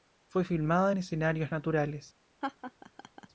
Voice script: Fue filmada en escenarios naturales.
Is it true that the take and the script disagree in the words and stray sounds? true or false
true